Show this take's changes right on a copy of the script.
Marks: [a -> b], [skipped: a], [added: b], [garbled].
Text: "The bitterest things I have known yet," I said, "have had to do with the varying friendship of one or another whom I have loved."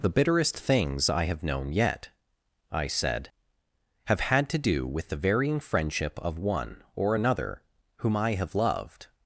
"The bitterest things I have known yet," I said, "have had to do with the varying friendship of one or another whom I have loved."